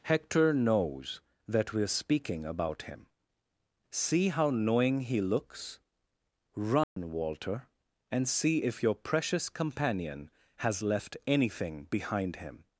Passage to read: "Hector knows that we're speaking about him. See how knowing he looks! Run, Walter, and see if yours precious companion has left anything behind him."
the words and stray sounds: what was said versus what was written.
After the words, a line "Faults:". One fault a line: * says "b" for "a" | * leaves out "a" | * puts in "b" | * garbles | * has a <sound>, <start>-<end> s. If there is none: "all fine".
"Hector knows that we're speaking about him. See how knowing he looks! Run, Walter, and see if your precious companion has left anything behind him."
Faults:
* has a dropout, 6.8-7.0 s
* says "your" for "yours"